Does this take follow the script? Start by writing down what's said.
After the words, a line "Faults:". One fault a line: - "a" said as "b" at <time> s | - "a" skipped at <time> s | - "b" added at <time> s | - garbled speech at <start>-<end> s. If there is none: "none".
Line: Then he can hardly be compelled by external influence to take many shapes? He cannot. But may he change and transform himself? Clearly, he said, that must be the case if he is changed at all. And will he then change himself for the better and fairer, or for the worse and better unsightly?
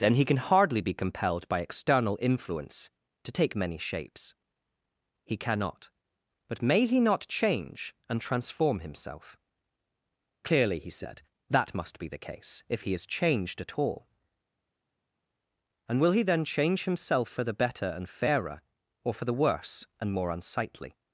Then he can hardly be compelled by external influence to take many shapes? He cannot. But may he not change and transform himself? Clearly, he said, that must be the case if he is changed at all. And will he then change himself for the better and fairer, or for the worse and more unsightly?
Faults:
- "not" added at 7.0 s
- "better" said as "more" at 20.1 s